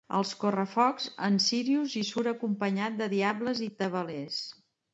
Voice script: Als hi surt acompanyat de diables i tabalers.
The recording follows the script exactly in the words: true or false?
false